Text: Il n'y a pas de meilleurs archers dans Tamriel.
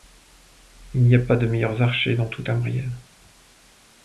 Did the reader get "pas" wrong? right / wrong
right